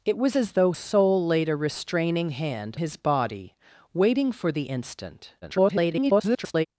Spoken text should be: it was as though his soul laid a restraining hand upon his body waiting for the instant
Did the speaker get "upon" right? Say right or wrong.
wrong